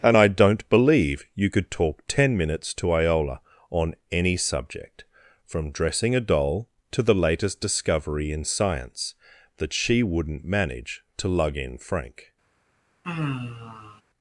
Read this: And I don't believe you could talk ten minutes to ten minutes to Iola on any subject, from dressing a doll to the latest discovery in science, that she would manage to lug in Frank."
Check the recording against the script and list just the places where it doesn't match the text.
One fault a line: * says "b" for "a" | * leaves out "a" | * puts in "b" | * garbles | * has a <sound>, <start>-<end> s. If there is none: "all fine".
* leaves out "ten minutes to"
* says "wouldn't" for "would"
* has a sigh, 13.0-14.0 s